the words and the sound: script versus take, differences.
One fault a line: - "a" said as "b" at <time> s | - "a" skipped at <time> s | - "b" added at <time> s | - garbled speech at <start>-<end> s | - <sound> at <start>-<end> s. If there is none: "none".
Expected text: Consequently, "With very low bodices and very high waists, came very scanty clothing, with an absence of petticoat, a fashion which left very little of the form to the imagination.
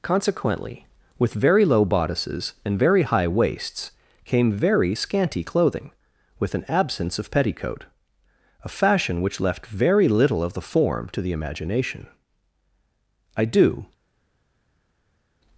- "I do" added at 13.3 s